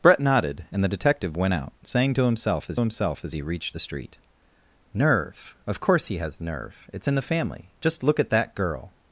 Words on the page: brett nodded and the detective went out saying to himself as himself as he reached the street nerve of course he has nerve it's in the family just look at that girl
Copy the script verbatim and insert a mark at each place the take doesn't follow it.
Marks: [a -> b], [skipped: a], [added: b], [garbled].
brett nodded and the detective went out saying to himself as himself as he reached the street nerve of course he has nerve it's in the family just look at that girl